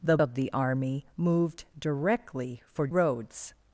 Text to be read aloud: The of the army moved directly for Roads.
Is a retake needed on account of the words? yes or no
no